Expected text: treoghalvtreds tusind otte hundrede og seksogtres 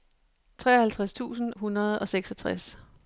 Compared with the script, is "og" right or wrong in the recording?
right